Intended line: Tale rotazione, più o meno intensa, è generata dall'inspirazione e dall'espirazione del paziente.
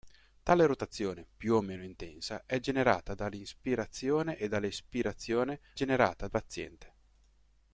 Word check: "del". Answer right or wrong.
wrong